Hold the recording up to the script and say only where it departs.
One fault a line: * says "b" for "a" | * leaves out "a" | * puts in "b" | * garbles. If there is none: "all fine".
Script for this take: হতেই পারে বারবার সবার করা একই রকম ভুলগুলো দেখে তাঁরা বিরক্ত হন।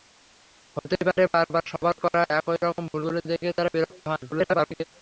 * garbles